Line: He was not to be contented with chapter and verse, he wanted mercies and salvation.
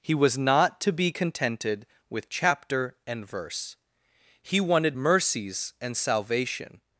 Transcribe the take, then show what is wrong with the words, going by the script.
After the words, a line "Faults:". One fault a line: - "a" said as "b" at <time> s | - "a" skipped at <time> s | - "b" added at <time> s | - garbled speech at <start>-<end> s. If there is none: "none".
He was not to be contented with chapter and verse, he wanted mercies and salvation.
Faults:
none